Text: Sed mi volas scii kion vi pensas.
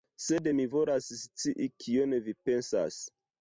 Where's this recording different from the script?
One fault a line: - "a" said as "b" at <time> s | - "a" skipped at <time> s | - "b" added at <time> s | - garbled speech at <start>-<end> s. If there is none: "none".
none